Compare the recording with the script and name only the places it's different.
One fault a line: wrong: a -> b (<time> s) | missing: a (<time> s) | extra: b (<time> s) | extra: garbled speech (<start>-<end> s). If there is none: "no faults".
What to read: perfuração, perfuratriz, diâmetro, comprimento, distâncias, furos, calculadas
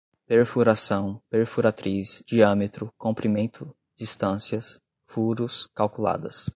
no faults